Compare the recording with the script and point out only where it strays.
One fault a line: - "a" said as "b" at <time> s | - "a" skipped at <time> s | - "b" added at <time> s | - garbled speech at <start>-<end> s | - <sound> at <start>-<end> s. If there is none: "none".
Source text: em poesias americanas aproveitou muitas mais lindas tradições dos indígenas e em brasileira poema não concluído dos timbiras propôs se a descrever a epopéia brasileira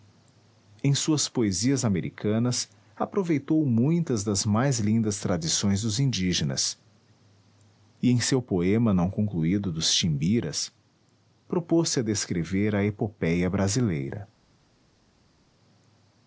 - "suas" added at 0.9 s
- "das" added at 4.2 s
- "brasileira" said as "seu" at 8.2 s